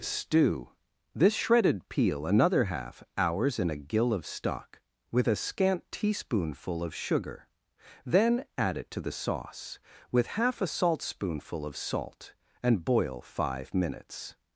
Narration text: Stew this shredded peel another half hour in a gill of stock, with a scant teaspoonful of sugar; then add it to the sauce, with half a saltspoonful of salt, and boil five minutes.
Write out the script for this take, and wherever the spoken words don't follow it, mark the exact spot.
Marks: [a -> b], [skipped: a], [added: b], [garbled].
Stew this shredded peel another half [hour -> hours] in a gill of stock, with a scant teaspoonful of sugar; then add it to the sauce, with half a saltspoonful of salt, and boil five minutes.